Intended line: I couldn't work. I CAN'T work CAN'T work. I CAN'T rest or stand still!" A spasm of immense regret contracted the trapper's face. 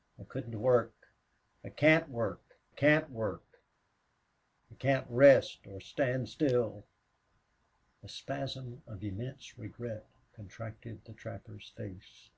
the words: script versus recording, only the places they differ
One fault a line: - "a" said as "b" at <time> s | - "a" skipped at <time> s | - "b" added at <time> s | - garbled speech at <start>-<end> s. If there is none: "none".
none